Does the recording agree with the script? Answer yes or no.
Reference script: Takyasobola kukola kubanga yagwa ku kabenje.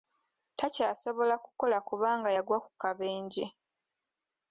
yes